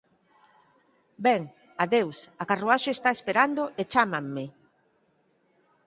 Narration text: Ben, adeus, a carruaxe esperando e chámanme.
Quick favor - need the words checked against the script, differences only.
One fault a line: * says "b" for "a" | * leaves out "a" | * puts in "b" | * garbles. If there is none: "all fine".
* puts in "está"